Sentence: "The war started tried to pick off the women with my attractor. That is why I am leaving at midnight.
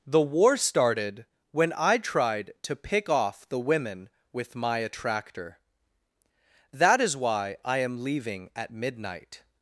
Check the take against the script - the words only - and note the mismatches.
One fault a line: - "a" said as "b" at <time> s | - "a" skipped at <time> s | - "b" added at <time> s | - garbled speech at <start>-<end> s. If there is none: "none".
- "when I" added at 1.5 s